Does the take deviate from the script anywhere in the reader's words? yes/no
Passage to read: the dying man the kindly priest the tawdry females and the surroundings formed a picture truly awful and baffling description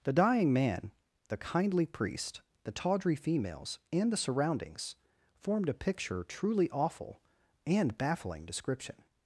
no